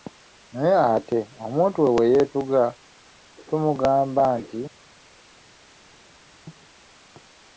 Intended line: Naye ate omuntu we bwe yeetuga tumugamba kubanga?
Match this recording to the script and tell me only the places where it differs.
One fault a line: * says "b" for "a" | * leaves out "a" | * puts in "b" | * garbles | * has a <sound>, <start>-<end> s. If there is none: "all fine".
* says "nti" for "kubanga"